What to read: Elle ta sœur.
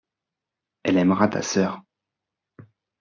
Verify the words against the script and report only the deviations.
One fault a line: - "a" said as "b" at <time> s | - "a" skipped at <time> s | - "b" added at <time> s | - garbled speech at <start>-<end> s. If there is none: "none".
- "aimera" added at 1.0 s